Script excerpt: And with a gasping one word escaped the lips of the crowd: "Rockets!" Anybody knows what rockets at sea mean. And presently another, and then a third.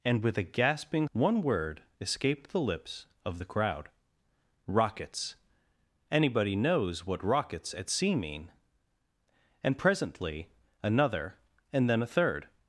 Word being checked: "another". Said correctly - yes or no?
yes